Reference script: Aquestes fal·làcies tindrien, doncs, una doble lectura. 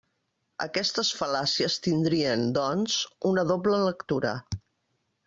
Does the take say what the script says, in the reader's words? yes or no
yes